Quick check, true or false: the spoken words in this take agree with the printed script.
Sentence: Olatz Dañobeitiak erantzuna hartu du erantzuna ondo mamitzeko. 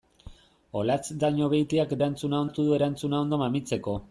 true